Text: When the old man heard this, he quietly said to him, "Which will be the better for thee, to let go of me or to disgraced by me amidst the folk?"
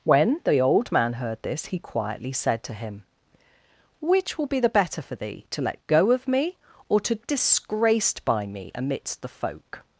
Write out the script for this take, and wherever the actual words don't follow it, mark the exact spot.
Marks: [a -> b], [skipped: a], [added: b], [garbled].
When the old man heard this, he quietly said to him, "Which will be the better for thee, to let go of me or to disgraced by me amidst the folk?"